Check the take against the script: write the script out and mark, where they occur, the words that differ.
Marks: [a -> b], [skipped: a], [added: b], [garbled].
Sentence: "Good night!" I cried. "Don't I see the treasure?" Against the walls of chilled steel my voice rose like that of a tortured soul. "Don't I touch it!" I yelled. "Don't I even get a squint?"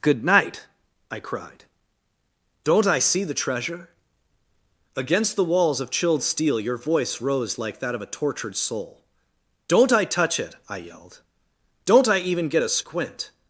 "Good night!" I cried. "Don't I see the treasure?" Against the walls of chilled steel [my -> your] voice rose like that of a tortured soul. "Don't I touch it!" I yelled. "Don't I even get a squint?"